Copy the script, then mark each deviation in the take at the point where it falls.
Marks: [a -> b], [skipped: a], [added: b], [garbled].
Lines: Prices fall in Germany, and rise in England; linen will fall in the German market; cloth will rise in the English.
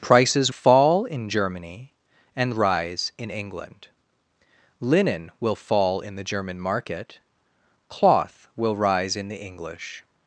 Prices fall in Germany, and rise in England; linen will fall in the German market; cloth will rise in the English.